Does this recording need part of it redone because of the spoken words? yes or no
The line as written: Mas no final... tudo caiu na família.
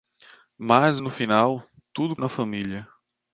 yes